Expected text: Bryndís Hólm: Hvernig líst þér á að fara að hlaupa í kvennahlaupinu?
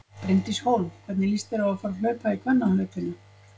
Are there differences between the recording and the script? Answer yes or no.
no